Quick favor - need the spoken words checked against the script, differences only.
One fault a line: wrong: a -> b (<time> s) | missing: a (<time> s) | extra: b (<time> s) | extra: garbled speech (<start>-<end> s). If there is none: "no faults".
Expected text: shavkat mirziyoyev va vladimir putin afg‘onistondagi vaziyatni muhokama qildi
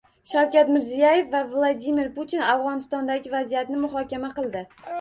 no faults